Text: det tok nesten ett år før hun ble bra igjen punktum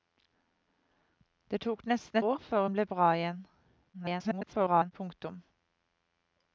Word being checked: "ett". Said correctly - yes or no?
no